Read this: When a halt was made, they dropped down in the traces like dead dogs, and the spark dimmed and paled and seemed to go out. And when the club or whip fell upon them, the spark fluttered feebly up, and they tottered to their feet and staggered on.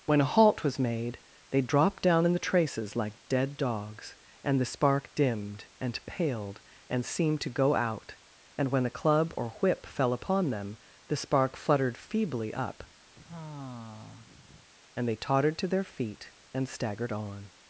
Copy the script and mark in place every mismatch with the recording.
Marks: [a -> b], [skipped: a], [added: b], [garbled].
When a halt was made, they dropped down in the traces like dead dogs, and the spark dimmed and paled and seemed to go out. And when [the -> a] club or whip fell upon them, the spark fluttered feebly up, and they tottered to their feet and staggered on.